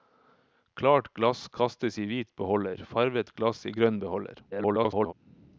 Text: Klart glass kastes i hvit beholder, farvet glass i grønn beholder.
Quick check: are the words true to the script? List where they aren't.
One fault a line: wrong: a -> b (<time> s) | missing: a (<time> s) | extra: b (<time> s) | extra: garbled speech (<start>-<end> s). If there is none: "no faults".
extra: garbled speech (4.5-5.1 s)